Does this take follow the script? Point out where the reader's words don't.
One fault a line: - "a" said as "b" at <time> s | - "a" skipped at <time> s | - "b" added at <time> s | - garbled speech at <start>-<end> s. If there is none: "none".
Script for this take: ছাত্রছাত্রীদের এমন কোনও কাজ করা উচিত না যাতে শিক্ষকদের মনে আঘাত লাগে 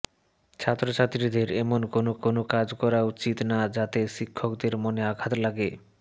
- "কোনও" added at 2.2 s